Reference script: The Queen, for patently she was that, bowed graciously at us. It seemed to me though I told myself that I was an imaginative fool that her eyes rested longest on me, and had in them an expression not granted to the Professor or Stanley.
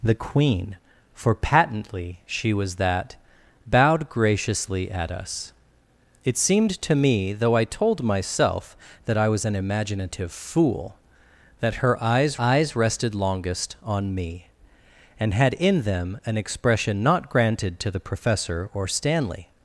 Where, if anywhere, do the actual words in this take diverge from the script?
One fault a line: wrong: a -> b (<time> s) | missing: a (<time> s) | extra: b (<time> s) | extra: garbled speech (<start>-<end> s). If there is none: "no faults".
extra: eyes (12.4 s)